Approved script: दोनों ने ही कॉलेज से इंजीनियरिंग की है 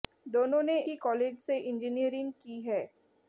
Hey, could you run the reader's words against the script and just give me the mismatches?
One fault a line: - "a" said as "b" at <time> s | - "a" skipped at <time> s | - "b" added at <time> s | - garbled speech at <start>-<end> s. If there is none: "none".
none